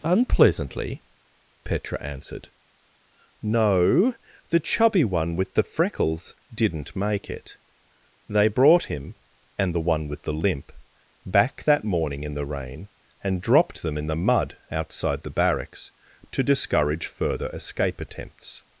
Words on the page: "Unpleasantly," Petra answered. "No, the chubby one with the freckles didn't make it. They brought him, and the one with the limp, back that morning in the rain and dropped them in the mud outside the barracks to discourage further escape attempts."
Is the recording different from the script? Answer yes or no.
no